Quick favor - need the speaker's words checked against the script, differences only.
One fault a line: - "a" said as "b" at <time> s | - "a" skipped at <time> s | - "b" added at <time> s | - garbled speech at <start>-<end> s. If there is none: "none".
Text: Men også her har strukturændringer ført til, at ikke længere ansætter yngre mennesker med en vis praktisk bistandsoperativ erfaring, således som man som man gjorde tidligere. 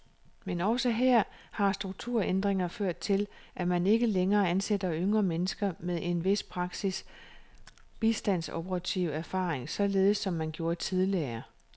- "man" added at 3.7 s
- "som man" skipped at 10.5 s